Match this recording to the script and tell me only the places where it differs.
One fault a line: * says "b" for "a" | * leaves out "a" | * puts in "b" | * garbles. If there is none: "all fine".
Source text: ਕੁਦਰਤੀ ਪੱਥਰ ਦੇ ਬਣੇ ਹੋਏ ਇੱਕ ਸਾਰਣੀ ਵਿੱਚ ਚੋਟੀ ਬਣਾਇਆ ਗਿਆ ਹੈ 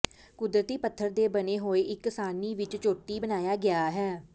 all fine